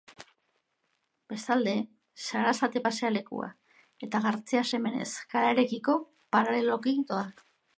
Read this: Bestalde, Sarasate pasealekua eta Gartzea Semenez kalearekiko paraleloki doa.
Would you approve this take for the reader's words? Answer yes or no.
yes